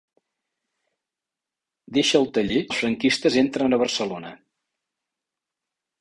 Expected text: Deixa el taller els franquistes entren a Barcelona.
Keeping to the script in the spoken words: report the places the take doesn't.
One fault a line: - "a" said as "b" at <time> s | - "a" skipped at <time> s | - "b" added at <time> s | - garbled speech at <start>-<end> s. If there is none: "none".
none